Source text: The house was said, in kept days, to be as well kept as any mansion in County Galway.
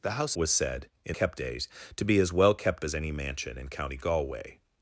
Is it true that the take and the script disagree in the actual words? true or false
false